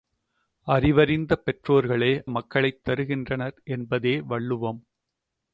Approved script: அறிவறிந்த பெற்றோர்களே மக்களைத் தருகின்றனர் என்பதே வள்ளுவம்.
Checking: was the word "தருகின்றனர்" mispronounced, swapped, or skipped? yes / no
no